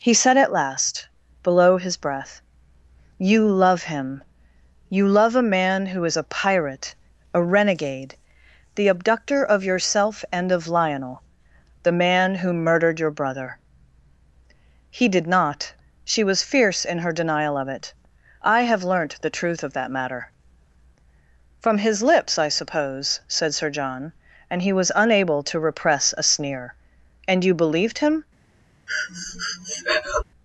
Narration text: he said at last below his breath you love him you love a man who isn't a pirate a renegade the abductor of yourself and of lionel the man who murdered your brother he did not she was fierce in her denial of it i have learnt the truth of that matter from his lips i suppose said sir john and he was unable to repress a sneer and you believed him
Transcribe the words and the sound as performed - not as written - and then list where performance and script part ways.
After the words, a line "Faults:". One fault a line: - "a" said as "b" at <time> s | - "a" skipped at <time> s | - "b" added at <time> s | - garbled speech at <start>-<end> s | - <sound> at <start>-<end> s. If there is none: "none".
he said at last below his breath you love him you love a man who is a pirate a renegade the abductor of yourself and of lionel the man who murdered your brother he did not she was fierce in her denial of it i have learnt the truth of that matter from his lips i suppose said sir john and he was unable to repress a sneer and you believed him
Faults:
- "isn't" said as "is" at 6.0 s
- breath at 28.9-30.2 s